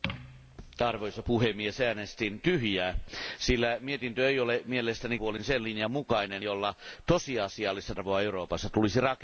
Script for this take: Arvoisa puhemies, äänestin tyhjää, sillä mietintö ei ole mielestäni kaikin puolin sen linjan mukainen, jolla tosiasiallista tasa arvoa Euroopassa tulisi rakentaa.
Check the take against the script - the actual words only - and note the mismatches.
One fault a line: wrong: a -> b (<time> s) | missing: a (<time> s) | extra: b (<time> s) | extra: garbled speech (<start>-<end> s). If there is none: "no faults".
missing: kaikin (5.2 s)
missing: tasa (7.9 s)